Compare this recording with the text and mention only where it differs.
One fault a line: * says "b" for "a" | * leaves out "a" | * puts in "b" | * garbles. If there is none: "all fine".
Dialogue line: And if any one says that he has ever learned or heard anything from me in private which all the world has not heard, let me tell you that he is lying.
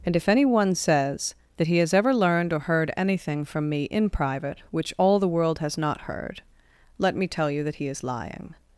all fine